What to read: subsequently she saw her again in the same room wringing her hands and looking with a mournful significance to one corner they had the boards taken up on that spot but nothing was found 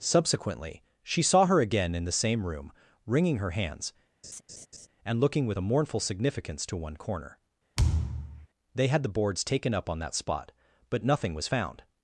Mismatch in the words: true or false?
false